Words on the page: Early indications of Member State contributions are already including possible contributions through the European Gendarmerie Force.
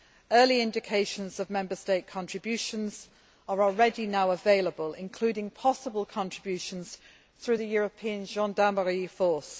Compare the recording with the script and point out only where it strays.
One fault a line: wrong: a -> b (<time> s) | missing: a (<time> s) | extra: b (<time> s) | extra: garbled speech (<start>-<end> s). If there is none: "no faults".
extra: now available (4.1 s)